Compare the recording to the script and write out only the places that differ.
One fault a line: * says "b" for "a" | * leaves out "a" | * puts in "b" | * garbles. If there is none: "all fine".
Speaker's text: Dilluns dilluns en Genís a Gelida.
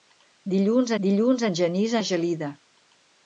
all fine